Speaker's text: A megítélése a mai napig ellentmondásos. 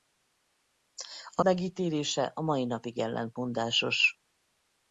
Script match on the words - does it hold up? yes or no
yes